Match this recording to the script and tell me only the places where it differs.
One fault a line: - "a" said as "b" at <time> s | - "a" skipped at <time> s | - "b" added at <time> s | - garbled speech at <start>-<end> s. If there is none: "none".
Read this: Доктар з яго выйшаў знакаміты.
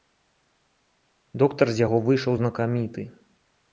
none